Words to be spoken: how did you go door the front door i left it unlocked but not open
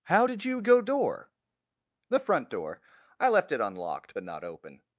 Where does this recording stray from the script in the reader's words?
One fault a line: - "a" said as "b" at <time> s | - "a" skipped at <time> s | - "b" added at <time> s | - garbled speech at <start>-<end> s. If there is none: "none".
none